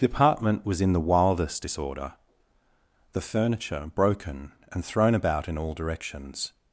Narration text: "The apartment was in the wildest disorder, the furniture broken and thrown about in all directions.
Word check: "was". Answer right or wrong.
right